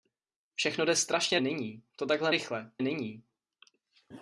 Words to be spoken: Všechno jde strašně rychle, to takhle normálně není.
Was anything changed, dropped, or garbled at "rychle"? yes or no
yes